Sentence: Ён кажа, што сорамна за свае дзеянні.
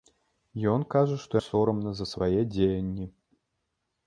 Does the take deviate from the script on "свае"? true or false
false